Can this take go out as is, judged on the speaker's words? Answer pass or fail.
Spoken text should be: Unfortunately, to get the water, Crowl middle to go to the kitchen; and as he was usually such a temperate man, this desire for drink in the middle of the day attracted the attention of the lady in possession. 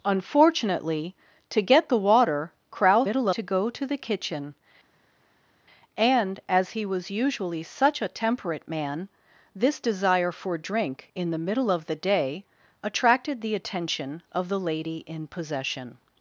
pass